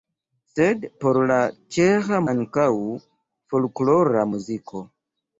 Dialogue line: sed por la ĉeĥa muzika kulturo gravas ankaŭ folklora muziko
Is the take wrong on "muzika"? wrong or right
wrong